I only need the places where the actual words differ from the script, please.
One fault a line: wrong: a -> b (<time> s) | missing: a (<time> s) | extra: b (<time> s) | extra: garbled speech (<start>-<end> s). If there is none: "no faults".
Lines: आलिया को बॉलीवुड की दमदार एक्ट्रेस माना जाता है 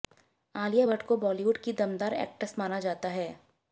extra: भट्ट (0.9 s)